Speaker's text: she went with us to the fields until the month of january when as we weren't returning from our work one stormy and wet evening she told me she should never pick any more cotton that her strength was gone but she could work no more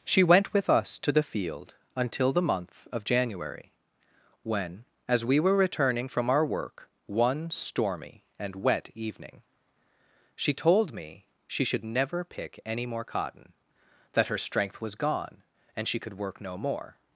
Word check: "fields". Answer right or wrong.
wrong